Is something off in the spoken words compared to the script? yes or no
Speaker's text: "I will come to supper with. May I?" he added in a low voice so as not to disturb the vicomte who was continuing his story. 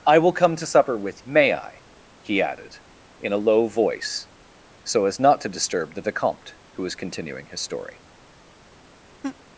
no